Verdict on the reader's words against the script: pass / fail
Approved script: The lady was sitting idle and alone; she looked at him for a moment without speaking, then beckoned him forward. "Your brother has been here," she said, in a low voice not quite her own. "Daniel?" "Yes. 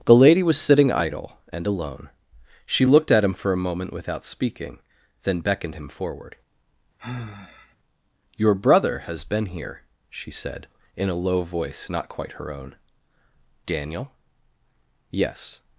pass